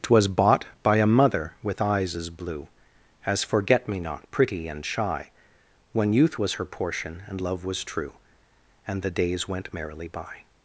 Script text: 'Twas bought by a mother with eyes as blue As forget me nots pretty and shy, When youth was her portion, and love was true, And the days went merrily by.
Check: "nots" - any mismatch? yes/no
yes